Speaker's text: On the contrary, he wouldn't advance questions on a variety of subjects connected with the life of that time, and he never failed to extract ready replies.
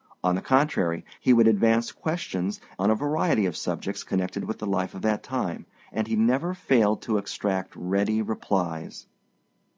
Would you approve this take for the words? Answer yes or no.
no